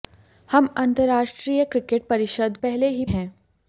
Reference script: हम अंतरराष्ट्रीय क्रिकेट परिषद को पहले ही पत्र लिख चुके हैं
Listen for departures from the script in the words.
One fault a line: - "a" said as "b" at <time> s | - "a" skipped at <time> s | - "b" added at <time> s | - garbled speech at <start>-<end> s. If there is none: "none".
- "को" skipped at 2.6 s
- "पत्र लिख चुके" skipped at 3.0 s